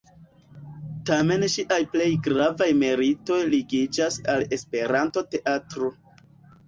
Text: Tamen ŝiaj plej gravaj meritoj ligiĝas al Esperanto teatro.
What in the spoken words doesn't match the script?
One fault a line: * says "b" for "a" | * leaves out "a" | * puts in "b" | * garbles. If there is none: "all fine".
all fine